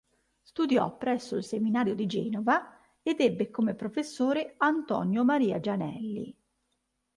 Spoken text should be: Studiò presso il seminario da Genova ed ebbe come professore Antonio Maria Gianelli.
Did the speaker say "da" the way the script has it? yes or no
no